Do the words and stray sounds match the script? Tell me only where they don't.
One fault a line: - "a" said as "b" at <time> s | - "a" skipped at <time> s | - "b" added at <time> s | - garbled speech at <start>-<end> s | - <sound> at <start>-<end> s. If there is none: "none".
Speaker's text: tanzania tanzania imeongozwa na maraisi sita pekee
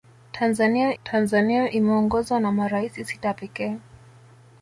none